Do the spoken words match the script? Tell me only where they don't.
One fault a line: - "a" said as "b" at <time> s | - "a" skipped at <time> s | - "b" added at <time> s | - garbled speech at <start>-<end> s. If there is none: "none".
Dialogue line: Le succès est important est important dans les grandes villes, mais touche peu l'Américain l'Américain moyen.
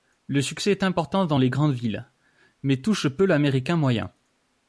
- "est important" skipped at 1.2 s
- "l'Américain" skipped at 3.8 s